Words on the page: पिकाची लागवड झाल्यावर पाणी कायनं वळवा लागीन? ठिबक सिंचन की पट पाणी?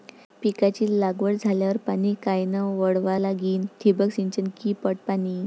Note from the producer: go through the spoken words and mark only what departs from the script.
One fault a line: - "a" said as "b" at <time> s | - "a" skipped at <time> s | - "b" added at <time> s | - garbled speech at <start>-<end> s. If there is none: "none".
none